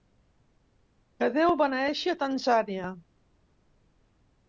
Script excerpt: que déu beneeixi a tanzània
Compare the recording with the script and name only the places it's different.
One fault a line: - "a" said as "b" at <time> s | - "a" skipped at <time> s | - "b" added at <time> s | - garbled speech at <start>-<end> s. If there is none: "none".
none